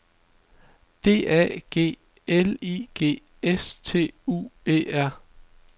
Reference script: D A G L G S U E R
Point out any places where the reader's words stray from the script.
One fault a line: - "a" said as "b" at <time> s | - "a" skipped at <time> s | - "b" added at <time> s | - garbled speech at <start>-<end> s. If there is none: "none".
- "I" added at 2.6 s
- "T" added at 3.8 s